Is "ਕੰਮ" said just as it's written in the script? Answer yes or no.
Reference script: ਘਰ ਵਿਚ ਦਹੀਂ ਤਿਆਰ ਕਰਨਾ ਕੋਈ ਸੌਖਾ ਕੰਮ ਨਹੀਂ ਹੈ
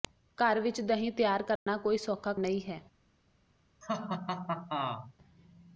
no